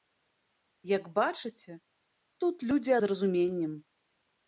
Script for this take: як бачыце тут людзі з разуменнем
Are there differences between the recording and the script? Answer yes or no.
no